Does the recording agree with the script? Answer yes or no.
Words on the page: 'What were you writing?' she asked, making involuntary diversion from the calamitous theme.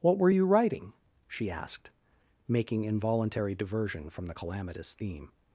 yes